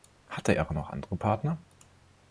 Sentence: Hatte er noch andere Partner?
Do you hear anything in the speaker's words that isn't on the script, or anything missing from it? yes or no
no